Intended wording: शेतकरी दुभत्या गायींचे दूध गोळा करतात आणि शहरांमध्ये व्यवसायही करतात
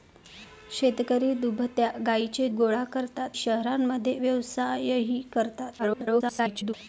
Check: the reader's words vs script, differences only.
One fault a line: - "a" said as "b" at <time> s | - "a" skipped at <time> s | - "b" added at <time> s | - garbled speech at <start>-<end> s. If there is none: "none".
- "दूध" skipped at 2.5 s
- "आणि" skipped at 3.4 s
- garbled speech at 5.8-6.7 s